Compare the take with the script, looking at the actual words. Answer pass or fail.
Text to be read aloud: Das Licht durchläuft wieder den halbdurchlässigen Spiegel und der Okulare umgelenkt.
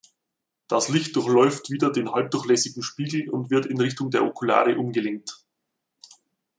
fail